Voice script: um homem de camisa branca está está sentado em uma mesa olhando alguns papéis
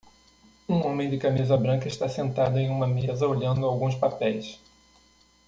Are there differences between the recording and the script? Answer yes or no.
yes